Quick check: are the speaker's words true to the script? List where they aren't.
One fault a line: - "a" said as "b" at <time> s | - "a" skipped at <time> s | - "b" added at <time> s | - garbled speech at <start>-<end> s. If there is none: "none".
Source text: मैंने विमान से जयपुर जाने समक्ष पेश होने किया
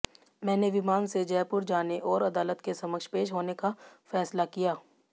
- "और अदालत के" added at 2.1 s
- "का फैसला" added at 3.5 s